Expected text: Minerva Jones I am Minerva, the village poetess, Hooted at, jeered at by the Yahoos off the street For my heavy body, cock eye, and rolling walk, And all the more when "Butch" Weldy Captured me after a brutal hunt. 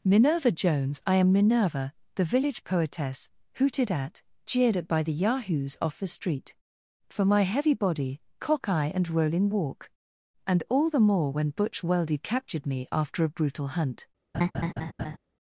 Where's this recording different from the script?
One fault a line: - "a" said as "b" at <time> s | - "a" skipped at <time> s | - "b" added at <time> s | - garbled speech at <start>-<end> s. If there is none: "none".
none